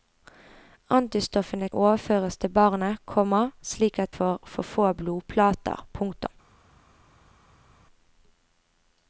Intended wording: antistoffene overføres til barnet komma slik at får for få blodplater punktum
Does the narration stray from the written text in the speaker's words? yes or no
no